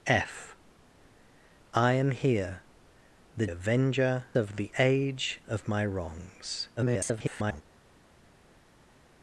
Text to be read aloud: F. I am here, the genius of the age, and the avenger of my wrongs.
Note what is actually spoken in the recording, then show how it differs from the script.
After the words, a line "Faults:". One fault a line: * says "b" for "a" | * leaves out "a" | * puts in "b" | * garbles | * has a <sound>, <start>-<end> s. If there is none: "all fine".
F. I am here, the avenger of the age, of my wrongs. [garbled]
Faults:
* says "avenger" for "genius"
* leaves out "and the avenger"
* garbles